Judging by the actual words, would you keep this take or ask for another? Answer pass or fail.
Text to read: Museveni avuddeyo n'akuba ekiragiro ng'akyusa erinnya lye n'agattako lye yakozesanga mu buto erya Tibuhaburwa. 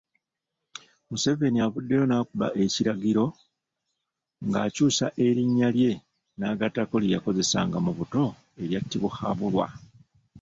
pass